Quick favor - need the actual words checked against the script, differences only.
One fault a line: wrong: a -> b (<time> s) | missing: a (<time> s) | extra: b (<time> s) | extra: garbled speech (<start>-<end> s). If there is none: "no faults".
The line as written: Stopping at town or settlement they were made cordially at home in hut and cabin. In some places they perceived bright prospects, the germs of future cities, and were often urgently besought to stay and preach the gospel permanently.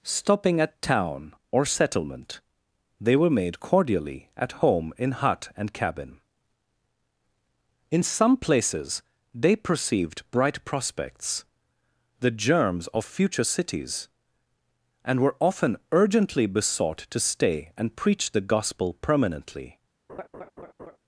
no faults